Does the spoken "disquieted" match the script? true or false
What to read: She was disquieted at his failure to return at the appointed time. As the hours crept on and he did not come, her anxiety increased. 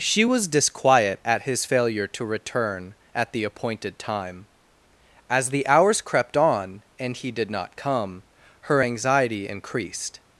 false